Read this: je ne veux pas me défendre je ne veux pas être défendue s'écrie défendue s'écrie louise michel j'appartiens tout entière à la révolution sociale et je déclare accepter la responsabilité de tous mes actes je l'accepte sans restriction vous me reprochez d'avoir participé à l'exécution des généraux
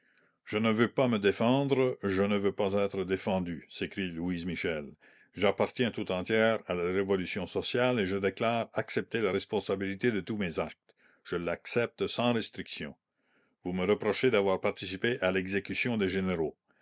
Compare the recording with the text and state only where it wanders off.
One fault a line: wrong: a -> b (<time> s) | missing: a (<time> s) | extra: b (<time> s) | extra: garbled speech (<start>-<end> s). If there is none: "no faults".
missing: défendue s'écrie (4.1 s)